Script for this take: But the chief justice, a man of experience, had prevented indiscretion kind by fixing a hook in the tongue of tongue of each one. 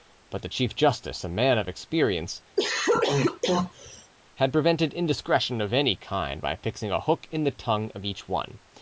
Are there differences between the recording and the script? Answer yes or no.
yes